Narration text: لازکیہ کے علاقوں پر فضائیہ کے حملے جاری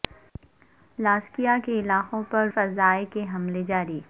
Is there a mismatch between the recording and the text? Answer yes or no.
no